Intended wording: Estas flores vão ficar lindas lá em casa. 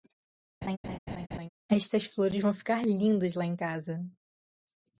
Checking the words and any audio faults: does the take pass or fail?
fail